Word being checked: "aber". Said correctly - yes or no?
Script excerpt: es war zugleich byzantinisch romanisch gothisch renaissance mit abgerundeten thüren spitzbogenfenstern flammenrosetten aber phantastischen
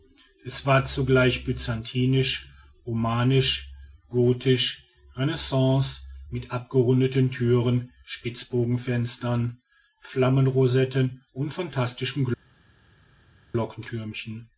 no